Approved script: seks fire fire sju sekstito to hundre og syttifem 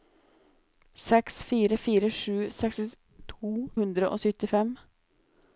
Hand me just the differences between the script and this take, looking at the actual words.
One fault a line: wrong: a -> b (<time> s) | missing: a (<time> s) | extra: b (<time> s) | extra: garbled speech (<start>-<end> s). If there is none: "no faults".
missing: to (3.5 s)